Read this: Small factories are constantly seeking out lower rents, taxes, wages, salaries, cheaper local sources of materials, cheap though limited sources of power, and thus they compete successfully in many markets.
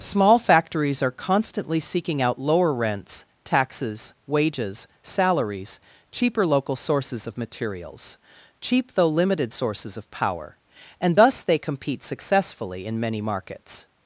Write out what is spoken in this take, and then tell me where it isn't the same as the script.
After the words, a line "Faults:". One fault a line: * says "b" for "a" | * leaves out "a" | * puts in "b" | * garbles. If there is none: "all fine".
Small factories are constantly seeking out lower rents, taxes, wages, salaries, cheaper local sources of materials, cheap though limited sources of power, and thus they compete successfully in many markets.
Faults:
all fine